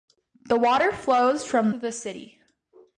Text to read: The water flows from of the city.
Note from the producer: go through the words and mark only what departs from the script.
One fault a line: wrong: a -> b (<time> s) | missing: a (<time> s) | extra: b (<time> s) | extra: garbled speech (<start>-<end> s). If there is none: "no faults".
no faults